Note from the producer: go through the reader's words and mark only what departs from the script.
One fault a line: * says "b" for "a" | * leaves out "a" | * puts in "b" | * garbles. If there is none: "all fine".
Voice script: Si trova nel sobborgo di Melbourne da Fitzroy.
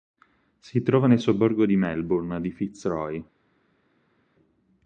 * says "di" for "da"